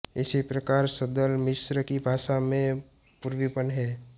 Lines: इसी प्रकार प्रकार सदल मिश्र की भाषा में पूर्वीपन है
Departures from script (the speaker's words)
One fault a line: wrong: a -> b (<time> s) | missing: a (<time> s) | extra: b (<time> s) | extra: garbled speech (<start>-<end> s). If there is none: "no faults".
missing: प्रकार (0.9 s)